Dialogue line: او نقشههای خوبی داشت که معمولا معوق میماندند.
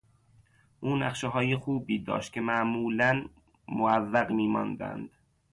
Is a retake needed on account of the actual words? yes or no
no